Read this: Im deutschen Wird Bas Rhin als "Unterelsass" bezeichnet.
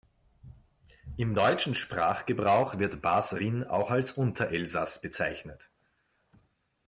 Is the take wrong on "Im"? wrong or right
right